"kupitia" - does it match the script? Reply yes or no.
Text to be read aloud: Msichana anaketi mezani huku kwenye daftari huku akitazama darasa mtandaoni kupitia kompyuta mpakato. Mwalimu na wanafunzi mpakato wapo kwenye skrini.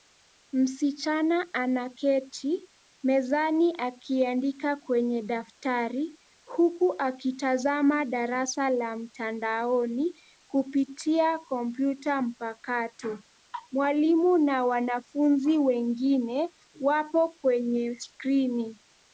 yes